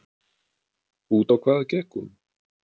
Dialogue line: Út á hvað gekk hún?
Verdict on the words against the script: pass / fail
pass